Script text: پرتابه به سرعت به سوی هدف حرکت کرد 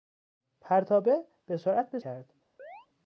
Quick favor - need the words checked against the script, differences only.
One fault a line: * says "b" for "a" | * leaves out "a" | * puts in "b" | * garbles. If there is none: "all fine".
* leaves out "سوی هدف حرکت"